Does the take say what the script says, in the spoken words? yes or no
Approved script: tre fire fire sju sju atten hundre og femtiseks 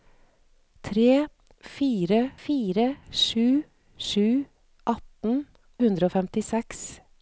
yes